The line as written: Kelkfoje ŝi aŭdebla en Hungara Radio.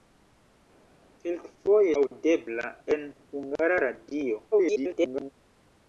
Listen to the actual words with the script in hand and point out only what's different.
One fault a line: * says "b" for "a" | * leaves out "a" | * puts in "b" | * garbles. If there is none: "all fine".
* leaves out "ŝi"
* garbles